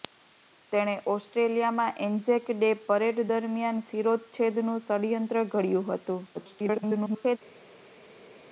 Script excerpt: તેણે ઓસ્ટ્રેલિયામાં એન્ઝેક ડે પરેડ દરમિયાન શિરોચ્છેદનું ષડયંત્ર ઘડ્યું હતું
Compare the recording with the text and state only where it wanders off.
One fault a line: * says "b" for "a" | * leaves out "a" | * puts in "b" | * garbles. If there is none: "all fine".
* garbles